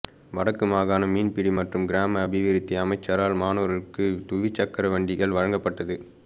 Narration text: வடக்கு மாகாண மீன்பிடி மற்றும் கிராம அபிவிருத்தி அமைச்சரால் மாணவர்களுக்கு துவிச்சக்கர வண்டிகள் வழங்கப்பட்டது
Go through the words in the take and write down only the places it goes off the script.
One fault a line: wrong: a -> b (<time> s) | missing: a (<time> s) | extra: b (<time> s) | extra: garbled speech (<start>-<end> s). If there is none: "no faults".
no faults